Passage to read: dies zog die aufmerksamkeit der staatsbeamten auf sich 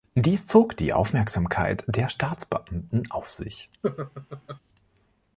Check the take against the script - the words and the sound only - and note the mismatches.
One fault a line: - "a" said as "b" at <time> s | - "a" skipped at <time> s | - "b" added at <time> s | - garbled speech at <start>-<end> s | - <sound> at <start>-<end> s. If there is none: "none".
- laugh at 3.8-4.6 s